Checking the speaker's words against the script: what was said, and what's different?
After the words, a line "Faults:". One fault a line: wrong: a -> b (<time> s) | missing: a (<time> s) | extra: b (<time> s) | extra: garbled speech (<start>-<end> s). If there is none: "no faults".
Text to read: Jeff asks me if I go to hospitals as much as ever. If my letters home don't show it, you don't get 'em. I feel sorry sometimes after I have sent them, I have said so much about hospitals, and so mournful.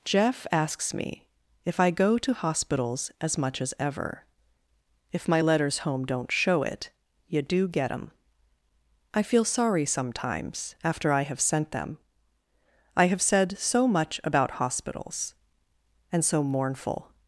Jeff asks me if I go to hospitals as much as ever. If my letters home don't show it, you do get 'em. I feel sorry sometimes after I have sent them, I have said so much about hospitals, and so mournful.
Faults:
wrong: don't -> do (7.4 s)